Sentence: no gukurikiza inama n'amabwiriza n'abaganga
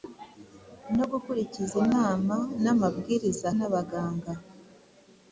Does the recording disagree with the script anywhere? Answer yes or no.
no